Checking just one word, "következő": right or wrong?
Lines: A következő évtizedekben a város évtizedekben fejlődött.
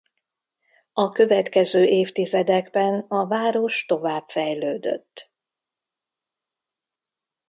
right